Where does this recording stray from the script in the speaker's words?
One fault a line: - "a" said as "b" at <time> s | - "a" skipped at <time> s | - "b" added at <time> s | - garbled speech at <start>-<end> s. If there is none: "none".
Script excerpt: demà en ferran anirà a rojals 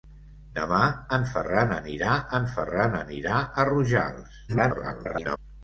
- "en ferran anirà" added at 2.4 s
- garbled speech at 4.5-5.4 s